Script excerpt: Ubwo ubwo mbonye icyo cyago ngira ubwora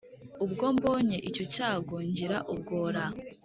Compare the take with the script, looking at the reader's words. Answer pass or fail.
fail